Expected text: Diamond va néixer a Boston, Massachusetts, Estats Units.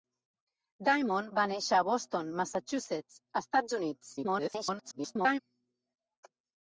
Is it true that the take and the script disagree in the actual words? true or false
true